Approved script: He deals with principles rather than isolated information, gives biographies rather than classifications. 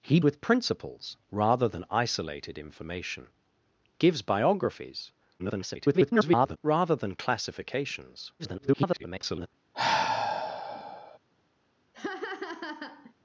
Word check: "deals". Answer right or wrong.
wrong